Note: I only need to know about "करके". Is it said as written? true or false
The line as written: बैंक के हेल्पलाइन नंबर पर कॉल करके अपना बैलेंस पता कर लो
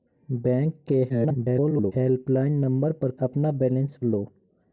false